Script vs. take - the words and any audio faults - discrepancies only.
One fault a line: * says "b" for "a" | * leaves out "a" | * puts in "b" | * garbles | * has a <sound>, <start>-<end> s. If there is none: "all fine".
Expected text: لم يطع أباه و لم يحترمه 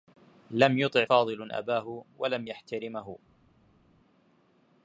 * puts in "فاضل"